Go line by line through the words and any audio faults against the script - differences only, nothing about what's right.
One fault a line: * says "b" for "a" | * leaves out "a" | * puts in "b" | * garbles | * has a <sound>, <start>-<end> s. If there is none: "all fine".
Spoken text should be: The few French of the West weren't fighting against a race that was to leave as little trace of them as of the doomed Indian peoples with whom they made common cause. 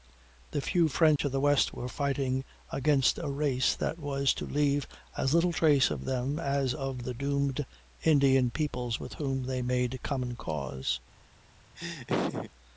* has a dropout, 1.2-1.2 s
* says "were" for "weren't"
* has a laugh, 11.8-12.5 s